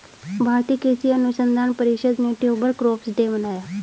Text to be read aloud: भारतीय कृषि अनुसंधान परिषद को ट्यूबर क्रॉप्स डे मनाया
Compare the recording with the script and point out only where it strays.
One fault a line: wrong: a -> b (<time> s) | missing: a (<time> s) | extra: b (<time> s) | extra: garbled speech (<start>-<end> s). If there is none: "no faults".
wrong: को -> ने (2.2 s)